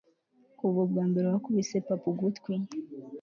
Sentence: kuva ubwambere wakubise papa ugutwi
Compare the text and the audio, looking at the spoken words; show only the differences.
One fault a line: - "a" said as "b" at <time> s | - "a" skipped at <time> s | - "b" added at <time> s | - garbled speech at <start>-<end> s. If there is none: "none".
none